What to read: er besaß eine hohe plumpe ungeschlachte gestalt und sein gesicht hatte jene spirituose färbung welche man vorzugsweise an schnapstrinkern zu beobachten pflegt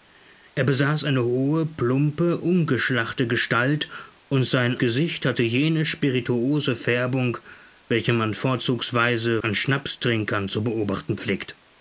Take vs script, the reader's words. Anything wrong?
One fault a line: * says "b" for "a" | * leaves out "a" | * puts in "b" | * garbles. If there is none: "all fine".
all fine